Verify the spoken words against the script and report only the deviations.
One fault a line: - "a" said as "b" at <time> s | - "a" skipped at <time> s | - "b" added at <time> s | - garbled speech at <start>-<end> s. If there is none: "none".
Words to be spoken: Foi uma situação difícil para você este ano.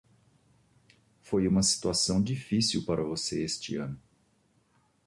none